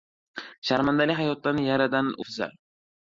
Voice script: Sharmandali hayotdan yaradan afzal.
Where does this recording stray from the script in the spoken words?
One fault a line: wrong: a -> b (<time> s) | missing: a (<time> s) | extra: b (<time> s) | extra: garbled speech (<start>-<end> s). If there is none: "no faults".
no faults